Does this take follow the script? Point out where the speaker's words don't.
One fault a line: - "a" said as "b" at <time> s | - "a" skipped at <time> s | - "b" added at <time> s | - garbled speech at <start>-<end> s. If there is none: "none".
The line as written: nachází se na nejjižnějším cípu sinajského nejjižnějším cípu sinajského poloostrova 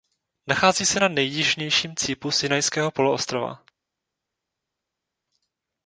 - "nejjižnějším cípu sinajského" skipped at 2.9 s